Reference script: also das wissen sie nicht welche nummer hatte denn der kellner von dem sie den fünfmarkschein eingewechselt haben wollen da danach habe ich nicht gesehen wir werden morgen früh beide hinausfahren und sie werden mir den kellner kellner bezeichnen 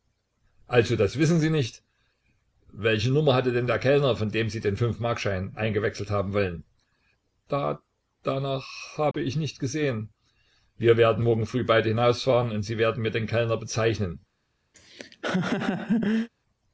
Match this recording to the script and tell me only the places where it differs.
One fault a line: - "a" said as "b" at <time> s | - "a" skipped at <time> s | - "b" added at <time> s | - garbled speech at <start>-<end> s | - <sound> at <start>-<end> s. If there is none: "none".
- dropout at 9.1-9.1 s
- "kellner" skipped at 13.6 s
- laugh at 14.7-16.3 s